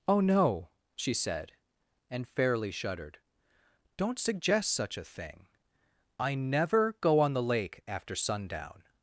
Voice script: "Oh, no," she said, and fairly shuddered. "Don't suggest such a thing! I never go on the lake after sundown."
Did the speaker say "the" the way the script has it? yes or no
yes